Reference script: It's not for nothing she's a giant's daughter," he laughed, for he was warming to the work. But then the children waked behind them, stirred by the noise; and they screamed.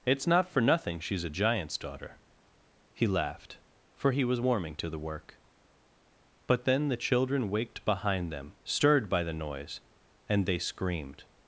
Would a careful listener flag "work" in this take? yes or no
no